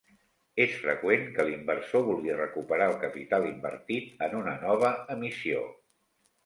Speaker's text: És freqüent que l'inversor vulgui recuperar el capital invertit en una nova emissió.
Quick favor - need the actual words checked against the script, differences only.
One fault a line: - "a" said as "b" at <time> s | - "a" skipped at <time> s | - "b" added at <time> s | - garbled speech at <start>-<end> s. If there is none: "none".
none